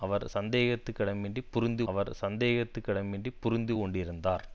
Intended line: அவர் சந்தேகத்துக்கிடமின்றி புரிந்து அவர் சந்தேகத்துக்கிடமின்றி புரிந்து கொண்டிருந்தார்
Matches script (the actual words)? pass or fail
pass